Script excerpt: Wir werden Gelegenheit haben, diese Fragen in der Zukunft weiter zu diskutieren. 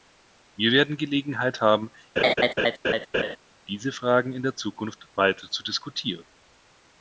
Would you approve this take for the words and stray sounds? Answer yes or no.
no